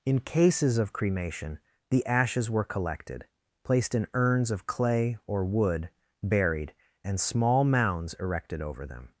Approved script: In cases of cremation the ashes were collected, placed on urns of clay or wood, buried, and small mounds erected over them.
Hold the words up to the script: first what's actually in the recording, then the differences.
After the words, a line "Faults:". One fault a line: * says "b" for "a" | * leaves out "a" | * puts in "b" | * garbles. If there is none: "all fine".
In cases of cremation the ashes were collected, placed in urns of clay or wood, buried, and small mounds erected over them.
Faults:
* says "in" for "on"